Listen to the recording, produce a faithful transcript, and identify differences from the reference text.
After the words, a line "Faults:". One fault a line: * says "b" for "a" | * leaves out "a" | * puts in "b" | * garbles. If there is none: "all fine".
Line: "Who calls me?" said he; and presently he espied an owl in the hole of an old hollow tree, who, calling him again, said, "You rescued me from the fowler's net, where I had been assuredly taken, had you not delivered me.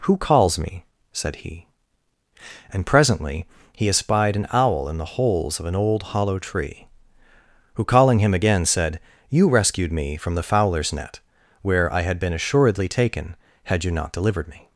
"Who calls me?" said he; and presently he espied an owl in the holes of an old hollow tree, who, calling him again, said, "You rescued me from the fowler's net, where I had been assuredly taken, had you not delivered me.
Faults:
* says "holes" for "hole"